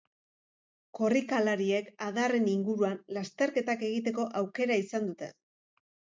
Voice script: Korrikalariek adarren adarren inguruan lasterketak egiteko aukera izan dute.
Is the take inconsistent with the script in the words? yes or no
yes